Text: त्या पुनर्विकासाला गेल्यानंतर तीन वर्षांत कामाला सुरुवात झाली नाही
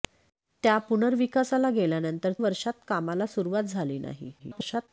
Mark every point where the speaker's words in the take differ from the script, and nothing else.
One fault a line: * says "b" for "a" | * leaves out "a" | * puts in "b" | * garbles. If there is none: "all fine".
* leaves out "तीन"
* garbles